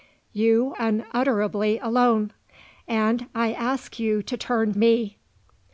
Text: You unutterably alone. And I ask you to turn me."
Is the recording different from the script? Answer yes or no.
no